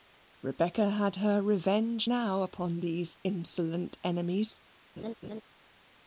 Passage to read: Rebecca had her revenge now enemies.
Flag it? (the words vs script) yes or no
yes